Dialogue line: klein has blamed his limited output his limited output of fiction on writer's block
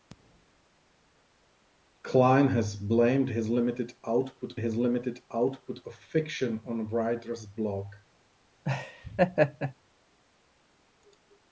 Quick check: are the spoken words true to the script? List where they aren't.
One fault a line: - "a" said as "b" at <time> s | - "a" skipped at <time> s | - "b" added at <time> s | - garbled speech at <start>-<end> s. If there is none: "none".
none